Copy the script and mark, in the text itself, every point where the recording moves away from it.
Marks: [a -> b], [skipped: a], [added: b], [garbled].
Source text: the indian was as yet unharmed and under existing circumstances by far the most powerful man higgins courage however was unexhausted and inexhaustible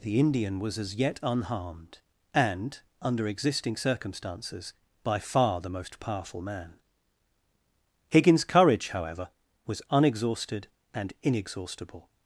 the indian was as yet unharmed and under existing circumstances by far the most powerful man higgins courage however was unexhausted and inexhaustible